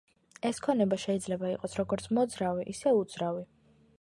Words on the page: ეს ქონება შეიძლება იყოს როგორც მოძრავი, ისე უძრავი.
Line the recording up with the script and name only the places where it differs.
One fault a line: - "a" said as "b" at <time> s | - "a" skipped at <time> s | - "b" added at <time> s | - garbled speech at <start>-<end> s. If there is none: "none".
none